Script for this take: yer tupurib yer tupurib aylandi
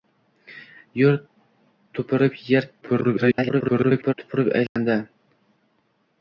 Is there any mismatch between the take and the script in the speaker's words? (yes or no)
yes